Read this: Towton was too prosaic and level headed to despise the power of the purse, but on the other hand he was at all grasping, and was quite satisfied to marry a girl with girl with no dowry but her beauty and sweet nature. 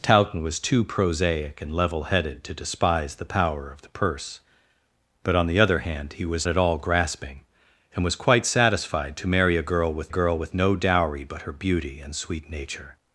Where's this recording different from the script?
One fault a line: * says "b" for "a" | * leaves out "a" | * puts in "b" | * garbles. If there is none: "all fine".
all fine